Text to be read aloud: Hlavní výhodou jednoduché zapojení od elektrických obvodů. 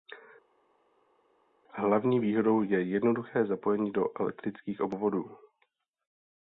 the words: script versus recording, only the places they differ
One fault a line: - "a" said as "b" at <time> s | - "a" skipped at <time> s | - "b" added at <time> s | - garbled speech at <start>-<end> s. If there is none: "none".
- "je" added at 2.6 s
- "od" said as "do" at 3.9 s